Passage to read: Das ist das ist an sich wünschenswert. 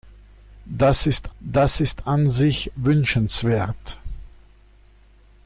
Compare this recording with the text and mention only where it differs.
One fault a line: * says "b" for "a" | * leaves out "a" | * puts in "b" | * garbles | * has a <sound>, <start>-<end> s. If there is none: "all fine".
all fine